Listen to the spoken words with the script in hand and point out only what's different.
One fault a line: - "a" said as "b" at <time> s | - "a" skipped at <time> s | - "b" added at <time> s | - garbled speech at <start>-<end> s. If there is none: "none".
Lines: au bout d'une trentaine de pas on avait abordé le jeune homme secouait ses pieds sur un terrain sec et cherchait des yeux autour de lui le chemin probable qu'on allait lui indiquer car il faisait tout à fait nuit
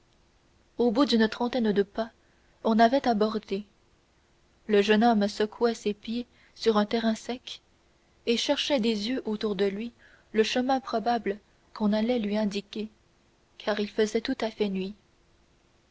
none